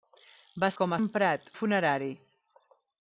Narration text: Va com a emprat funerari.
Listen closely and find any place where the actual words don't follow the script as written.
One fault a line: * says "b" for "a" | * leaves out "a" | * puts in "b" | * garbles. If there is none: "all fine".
all fine